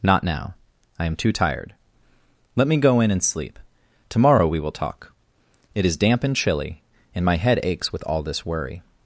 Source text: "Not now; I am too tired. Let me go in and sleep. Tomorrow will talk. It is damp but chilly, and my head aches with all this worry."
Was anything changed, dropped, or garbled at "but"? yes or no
yes